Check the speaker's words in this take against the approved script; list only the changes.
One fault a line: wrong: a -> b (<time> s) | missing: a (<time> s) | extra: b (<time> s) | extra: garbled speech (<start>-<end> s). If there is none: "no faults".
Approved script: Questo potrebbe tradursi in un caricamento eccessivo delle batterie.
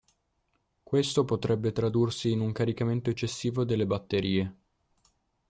no faults